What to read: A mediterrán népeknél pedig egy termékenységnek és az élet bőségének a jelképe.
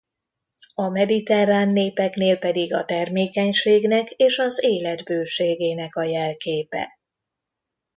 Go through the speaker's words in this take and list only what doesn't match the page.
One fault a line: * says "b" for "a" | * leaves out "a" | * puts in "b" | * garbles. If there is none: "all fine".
* says "a" for "egy"